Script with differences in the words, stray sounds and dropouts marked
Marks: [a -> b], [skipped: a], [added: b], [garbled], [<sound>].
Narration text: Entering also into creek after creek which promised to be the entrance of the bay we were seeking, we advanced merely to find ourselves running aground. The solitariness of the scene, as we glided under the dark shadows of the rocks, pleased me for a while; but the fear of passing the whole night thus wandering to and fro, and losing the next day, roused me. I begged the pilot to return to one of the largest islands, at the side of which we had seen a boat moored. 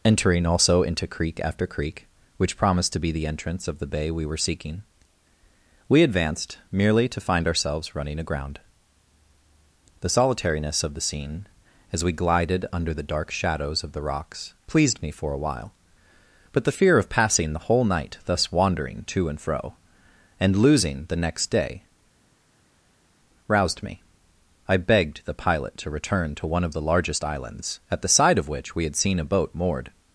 Entering also into creek after creek which promised to be the entrance of the bay we were seeking, we advanced merely to find ourselves running aground. The solitariness of the scene, as we glided under the dark shadows of the rocks, pleased me for a while; but the fear of passing the whole night thus wandering to and fro, and losing the next day, roused me. I begged the pilot to return to one of the largest islands, at the side of which we had seen a boat moored.